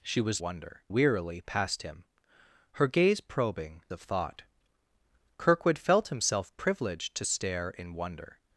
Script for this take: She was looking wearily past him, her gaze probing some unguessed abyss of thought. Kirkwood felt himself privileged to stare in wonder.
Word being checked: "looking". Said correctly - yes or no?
no